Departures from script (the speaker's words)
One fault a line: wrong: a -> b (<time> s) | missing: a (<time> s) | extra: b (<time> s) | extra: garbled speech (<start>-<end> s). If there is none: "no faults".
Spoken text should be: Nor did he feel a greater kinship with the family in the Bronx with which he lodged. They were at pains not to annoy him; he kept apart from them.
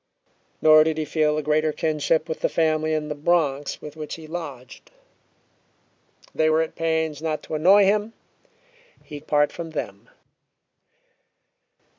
missing: kept (9.2 s)